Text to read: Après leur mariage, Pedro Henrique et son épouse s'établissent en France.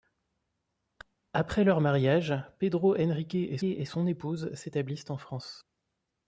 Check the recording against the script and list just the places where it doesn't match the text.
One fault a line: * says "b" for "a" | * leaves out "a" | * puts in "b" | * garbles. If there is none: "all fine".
* puts in "et"